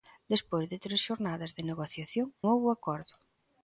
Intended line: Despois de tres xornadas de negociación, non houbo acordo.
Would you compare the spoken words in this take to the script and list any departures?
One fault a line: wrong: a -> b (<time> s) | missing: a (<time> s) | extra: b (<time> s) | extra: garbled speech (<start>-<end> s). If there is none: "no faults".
missing: non (2.3 s)